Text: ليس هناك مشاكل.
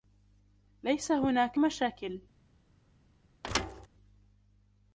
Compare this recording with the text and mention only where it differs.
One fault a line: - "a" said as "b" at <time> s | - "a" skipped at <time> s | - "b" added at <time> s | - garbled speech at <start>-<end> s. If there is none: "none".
none